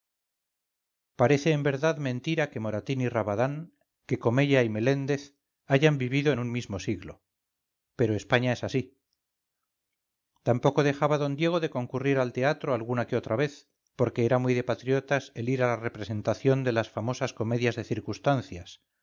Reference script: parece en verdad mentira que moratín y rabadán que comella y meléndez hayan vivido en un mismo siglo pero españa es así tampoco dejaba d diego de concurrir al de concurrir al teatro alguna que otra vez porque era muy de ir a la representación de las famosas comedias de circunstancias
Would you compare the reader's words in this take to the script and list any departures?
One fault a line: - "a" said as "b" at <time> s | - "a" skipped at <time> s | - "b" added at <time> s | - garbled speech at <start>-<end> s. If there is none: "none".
- "de concurrir al" skipped at 12.3 s
- "patriotas el" added at 14.6 s